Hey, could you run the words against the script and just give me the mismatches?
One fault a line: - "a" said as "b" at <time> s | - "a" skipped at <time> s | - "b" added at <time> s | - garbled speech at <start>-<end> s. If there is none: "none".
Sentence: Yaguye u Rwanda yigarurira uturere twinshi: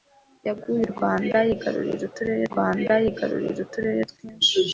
- "Rwanda yigarurira uturere" added at 2.5 s